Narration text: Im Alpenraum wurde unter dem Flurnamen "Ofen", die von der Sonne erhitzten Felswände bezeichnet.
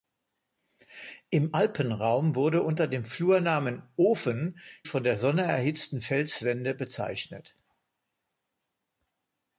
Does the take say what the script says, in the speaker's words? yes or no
no